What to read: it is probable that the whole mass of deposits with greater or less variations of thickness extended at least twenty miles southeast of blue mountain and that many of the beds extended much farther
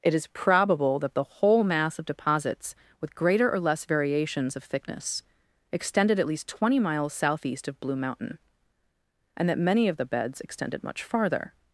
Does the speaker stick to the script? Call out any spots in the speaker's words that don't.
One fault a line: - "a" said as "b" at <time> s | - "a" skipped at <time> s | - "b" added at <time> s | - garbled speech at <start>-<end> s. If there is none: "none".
none